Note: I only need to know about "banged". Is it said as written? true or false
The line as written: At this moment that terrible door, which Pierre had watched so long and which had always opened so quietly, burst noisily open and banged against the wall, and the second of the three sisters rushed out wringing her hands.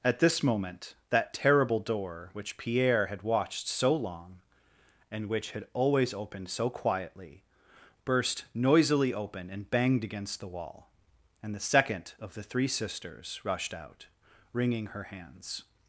true